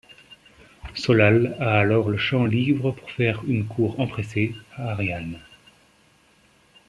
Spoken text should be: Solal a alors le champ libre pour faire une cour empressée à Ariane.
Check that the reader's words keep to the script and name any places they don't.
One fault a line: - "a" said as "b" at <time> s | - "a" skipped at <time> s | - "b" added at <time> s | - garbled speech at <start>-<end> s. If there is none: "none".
none